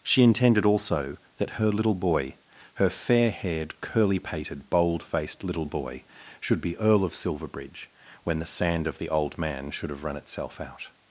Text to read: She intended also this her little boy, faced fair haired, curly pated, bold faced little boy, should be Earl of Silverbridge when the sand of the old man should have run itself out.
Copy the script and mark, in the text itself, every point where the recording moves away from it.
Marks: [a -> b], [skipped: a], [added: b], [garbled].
She intended also [this -> that] her little boy, [faced -> her] fair haired, curly pated, bold faced little boy, should be Earl of Silverbridge when the sand of the old man should have run itself out.